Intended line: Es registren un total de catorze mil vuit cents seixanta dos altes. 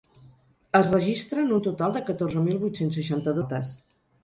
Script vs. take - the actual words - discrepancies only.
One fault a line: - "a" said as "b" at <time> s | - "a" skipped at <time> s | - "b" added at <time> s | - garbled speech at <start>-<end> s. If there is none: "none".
- "dos" skipped at 3.4 s